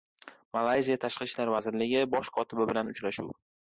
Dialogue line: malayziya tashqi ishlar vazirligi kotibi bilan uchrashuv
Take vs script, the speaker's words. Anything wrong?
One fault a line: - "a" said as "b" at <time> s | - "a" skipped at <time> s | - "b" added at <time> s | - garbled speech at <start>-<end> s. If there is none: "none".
- "bosh" added at 2.2 s